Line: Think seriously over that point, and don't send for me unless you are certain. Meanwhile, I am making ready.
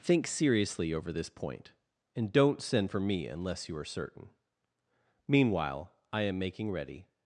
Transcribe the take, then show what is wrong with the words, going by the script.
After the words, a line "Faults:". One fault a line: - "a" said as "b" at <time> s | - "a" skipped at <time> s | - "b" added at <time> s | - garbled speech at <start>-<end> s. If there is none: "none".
Think seriously over this point, and don't send for me unless you are certain. Meanwhile, I am making ready.
Faults:
- "that" said as "this" at 1.1 s